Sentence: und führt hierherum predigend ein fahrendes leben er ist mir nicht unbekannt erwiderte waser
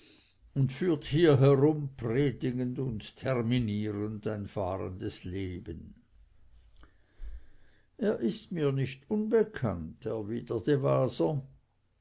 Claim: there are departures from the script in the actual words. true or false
true